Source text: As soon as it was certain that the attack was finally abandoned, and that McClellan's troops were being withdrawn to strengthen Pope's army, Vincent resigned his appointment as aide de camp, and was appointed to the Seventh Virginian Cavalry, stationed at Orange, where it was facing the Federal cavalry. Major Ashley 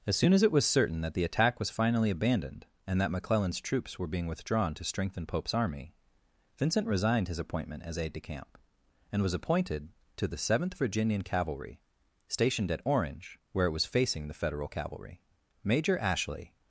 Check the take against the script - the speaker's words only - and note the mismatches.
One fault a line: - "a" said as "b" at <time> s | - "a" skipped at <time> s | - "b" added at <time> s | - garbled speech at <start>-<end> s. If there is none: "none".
none